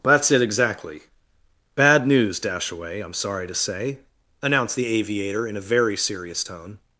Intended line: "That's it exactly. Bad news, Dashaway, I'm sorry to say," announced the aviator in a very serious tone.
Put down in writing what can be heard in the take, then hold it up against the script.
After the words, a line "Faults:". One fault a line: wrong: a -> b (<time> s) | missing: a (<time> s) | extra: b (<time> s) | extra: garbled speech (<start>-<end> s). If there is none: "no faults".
"That's it exactly. Bad news, Dashaway, I'm sorry to say," announced the aviator in a very serious tone.
Faults:
no faults